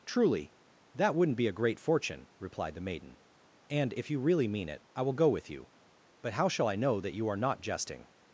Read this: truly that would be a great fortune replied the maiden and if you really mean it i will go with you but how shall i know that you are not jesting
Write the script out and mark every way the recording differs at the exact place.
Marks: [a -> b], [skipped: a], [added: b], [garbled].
truly that [would -> wouldn't] be a great fortune replied the maiden and if you really mean it i will go with you but how shall i know that you are not jesting